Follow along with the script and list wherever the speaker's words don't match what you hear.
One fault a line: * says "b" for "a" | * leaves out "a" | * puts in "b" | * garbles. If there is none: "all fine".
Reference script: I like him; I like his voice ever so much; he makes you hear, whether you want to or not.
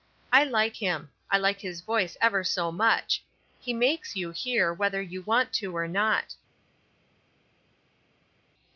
all fine